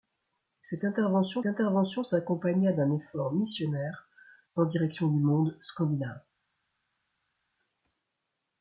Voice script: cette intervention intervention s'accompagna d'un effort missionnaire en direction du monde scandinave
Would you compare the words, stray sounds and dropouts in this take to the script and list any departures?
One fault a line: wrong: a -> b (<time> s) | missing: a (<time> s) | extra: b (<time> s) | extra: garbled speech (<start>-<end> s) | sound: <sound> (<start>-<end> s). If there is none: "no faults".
no faults